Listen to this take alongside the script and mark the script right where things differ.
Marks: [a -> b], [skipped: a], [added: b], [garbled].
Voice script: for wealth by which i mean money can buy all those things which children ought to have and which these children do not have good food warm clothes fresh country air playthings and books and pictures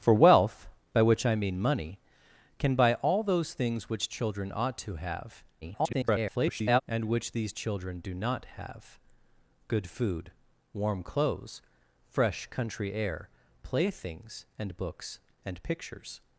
for wealth by which i mean money can buy all those things which children ought to have [garbled] and which these children do not have good food warm clothes fresh country air playthings and books and pictures